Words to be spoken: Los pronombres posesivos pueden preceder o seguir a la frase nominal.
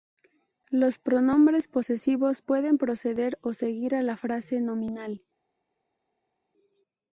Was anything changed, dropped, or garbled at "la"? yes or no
no